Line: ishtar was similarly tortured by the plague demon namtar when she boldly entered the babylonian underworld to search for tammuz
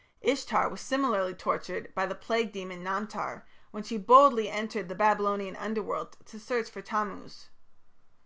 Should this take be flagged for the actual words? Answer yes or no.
no